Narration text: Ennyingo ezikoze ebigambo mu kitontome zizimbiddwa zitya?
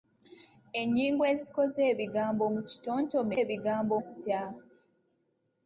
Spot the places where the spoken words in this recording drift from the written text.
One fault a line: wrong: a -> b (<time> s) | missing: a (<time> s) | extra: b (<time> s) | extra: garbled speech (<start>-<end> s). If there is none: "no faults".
wrong: zizimbiddwa -> ebigambo (3.4 s)